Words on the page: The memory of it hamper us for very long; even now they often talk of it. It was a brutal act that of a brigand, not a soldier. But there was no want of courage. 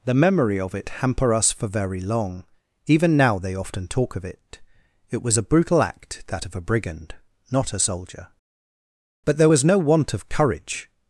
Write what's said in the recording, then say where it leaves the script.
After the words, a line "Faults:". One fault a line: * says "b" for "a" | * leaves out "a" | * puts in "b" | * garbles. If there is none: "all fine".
The memory of it hamper us for very long; even now they often talk of it. It was a brutal act that of a brigand, not a soldier. But there was no want of courage.
Faults:
all fine